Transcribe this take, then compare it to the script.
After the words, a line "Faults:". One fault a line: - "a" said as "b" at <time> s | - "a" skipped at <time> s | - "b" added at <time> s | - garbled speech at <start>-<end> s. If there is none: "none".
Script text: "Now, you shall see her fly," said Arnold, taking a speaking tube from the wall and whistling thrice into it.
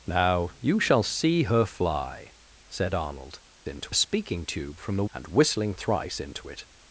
"Now, you shall see her fly," said Arnold, into a speaking tube from the and whistling thrice into it.
Faults:
- "taking" said as "into" at 3.7 s
- "wall" skipped at 5.0 s